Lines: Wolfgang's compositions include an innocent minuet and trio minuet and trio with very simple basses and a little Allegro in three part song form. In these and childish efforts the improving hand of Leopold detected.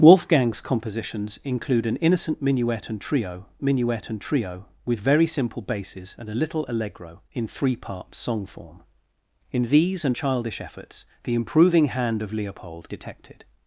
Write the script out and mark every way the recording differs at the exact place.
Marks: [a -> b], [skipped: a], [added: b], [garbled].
Wolfgang's compositions include an innocent minuet and trio minuet and trio with very simple basses and a little Allegro in three part song form. In these and childish efforts the improving hand of Leopold detected.